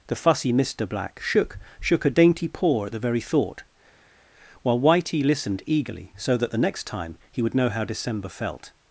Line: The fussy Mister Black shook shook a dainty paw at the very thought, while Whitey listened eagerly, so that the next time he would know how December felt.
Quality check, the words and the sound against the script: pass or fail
pass